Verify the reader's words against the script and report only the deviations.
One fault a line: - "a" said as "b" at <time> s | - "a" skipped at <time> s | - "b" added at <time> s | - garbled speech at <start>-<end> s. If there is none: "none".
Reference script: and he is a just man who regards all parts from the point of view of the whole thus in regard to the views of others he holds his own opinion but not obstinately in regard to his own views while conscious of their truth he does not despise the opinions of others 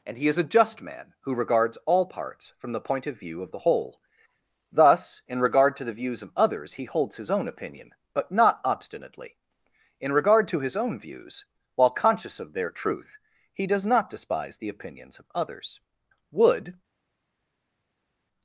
- "wood" added at 16.3 s